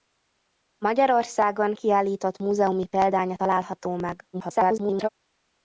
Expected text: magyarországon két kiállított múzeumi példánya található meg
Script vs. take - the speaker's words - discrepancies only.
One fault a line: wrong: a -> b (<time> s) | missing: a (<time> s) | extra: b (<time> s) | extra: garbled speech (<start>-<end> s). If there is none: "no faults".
missing: két (1.7 s)
extra: garbled speech (4.3-5.1 s)